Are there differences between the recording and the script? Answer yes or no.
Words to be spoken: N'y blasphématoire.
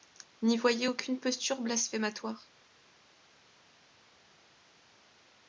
yes